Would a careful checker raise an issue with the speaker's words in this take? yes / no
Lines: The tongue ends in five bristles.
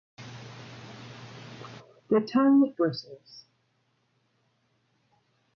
yes